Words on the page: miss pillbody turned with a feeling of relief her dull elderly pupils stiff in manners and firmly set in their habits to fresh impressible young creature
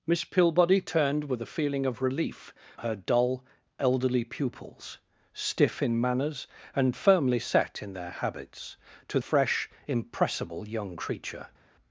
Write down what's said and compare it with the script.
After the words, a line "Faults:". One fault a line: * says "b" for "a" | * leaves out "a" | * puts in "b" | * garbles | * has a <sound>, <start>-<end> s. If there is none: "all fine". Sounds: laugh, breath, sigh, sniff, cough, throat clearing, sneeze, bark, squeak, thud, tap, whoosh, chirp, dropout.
miss pillbody turned with a feeling of relief her dull elderly pupils stiff in manners and firmly set in their habits to fresh impressible young creature
Faults:
all fine